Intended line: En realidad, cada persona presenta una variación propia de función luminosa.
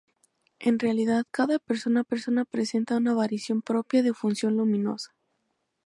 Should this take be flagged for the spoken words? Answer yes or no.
yes